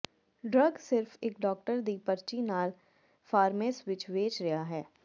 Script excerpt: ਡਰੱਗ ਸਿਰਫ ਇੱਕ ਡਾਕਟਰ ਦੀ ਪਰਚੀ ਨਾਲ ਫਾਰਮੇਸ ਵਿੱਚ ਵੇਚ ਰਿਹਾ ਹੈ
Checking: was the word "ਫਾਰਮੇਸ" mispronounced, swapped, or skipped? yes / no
no